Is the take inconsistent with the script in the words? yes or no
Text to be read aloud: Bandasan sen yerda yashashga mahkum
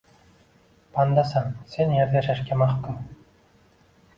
no